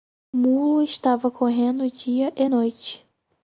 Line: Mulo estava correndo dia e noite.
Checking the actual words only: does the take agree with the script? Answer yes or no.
yes